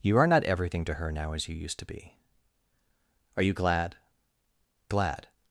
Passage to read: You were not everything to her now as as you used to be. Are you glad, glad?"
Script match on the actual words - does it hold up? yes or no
no